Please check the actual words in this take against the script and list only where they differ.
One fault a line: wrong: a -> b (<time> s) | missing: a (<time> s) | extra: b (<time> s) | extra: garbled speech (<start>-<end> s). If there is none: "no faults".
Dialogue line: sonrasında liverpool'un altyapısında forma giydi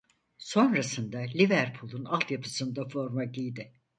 no faults